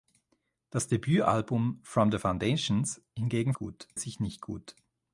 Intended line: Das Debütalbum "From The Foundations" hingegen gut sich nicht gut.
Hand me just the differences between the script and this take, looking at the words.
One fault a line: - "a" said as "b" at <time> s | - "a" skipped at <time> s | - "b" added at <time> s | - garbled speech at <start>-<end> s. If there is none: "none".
none